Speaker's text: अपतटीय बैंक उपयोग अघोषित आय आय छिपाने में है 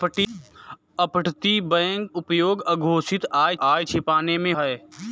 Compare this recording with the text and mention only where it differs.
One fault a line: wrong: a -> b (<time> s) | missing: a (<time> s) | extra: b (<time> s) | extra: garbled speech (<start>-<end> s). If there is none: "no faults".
no faults